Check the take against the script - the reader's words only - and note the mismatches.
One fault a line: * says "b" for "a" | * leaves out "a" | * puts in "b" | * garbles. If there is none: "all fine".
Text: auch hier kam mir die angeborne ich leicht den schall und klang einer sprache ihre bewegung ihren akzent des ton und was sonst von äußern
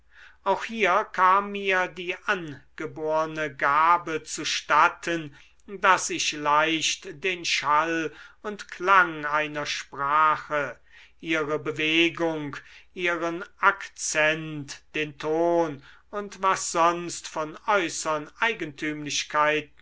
* puts in "gabe zustatten daß"
* says "den" for "des"